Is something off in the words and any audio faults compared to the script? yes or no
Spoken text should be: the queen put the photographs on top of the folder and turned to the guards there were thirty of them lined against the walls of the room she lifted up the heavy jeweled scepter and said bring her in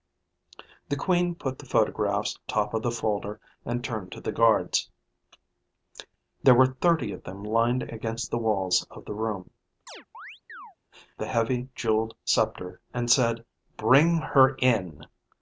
yes